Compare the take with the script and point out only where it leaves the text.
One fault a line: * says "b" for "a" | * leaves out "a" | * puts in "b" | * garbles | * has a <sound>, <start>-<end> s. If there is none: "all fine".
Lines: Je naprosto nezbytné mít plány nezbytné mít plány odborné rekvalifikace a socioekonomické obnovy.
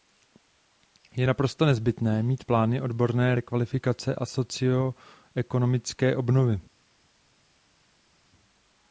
* leaves out "nezbytné mít plány"